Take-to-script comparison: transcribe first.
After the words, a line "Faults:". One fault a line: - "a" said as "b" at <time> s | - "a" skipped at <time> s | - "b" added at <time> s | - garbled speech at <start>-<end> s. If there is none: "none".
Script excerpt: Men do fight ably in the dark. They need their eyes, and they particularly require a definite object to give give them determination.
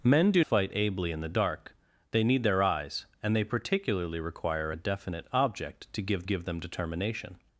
Men do fight ably in the dark. They need their eyes, and they particularly require a definite object to give give them determination.
Faults:
none